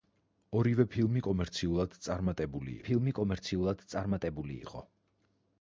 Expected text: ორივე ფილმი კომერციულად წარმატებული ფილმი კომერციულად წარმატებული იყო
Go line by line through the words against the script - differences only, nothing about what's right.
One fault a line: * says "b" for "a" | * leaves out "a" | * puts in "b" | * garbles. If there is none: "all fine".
all fine